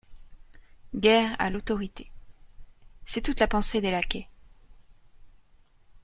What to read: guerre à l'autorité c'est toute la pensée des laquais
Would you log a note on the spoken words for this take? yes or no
no